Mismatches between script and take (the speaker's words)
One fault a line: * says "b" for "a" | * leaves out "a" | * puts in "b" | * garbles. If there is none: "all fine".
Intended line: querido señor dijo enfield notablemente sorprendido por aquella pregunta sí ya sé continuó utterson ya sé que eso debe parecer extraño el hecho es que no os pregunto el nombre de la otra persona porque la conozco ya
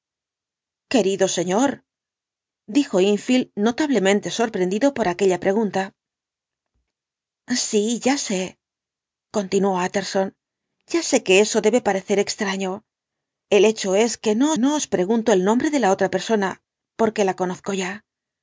* puts in "no"